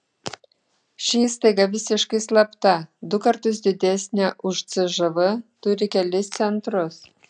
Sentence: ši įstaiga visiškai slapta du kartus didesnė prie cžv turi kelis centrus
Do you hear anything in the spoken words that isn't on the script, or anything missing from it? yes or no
yes